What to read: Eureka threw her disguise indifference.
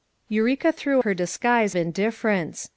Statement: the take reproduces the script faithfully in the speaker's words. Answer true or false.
true